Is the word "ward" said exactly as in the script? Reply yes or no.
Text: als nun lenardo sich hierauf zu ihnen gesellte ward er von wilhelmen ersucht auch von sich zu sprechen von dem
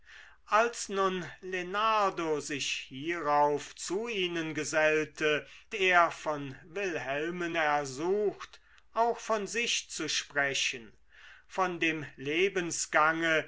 no